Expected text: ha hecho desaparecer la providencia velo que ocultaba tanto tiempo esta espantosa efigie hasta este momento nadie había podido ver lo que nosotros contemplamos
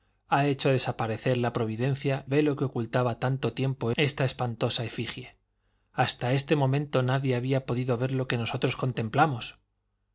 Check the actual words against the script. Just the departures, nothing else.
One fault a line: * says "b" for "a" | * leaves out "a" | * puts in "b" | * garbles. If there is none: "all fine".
all fine